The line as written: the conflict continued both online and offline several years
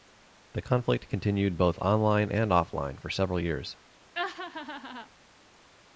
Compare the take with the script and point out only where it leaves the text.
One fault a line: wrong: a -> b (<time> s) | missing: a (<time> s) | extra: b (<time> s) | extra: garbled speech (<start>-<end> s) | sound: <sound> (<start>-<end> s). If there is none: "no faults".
extra: for (3.0 s)
sound: laugh (4.1-5.1 s)